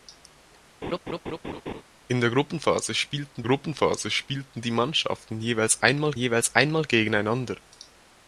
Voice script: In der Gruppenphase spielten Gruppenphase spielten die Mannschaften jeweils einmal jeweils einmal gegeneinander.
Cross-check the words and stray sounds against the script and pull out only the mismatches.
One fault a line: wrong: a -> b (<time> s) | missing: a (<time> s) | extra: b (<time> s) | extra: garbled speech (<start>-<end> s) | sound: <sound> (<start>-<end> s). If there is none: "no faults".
sound: laugh (0.8-1.8 s)